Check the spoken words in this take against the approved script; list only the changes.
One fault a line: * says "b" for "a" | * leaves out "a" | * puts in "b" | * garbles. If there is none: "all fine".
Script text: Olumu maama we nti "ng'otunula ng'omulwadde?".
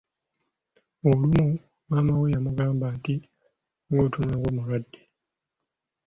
* puts in "yamugamba"